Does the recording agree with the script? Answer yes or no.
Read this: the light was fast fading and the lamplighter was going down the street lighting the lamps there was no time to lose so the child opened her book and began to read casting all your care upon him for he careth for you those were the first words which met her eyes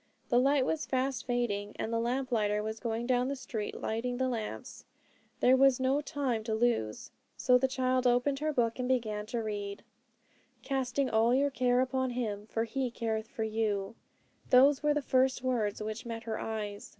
yes